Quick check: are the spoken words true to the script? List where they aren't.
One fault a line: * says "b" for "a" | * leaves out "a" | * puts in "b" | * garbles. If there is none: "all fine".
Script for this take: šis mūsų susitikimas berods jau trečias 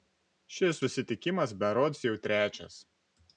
* leaves out "mūsų"